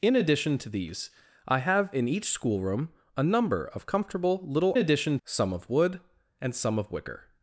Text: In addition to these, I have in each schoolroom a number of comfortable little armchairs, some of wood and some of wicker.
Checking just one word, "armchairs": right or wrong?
wrong